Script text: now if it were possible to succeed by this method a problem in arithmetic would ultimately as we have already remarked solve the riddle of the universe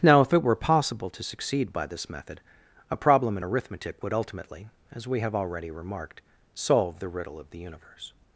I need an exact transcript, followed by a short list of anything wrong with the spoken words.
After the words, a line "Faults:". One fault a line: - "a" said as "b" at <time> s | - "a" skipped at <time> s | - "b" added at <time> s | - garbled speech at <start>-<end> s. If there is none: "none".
now if it were possible to succeed by this method a problem in arithmetic would ultimately as we have already remarked solve the riddle of the universe
Faults:
none